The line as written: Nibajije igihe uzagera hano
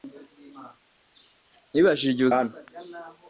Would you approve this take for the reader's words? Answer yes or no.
no